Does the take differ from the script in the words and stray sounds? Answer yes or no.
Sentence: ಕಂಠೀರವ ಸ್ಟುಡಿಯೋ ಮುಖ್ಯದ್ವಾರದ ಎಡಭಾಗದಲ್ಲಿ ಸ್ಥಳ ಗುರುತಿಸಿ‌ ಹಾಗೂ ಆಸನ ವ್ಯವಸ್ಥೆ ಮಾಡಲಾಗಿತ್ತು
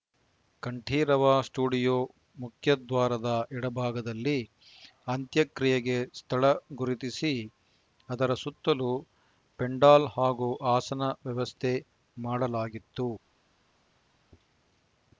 yes